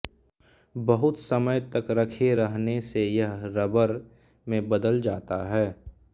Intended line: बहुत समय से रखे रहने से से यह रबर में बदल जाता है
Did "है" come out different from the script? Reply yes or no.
no